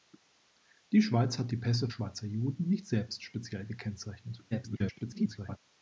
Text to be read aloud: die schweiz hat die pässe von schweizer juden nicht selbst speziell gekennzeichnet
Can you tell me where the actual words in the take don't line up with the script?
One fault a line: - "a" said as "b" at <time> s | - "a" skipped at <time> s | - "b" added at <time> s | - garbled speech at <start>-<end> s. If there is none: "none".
- "von" skipped at 1.9 s
- garbled speech at 4.5-5.6 s